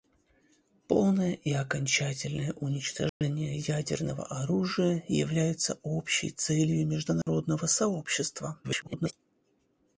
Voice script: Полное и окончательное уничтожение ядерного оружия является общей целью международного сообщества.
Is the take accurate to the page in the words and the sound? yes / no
no